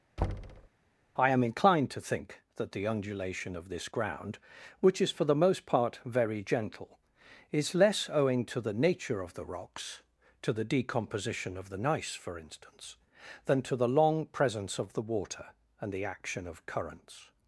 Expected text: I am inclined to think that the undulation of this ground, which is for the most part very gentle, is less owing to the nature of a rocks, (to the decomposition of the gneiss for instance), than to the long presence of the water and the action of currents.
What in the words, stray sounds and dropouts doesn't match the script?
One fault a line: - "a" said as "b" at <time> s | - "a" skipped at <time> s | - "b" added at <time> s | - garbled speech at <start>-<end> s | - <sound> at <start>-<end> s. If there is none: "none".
- thud at 0.2-0.7 s
- "a" said as "the" at 9.3 s